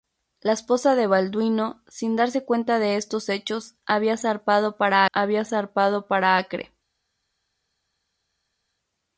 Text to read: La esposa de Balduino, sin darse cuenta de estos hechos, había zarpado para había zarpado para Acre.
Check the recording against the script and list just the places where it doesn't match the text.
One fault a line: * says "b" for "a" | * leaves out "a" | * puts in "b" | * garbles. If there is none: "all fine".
all fine